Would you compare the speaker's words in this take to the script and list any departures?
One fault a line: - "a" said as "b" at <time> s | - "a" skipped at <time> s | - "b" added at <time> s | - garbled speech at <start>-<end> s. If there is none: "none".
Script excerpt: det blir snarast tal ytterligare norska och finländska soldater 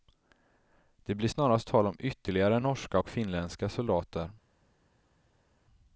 - "om" added at 1.9 s